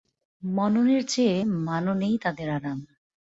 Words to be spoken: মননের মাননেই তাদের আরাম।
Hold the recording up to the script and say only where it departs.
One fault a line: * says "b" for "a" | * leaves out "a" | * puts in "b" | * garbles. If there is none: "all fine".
* puts in "চেয়ে"